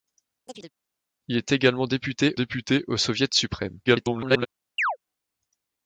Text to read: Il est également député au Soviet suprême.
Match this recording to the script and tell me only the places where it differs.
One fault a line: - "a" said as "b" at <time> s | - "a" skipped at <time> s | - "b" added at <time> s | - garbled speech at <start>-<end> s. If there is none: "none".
- "député" added at 2.3 s
- garbled speech at 3.9-4.5 s